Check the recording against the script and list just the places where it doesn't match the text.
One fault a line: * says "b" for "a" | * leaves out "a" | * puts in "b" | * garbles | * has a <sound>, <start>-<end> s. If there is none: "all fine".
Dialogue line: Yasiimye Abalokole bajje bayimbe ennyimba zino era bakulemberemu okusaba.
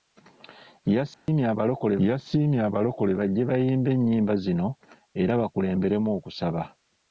* has a dropout, 1.1-1.3 s
* puts in "yasiimye Abalokole"